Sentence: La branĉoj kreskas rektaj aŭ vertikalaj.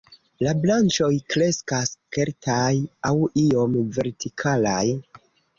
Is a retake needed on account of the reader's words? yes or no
yes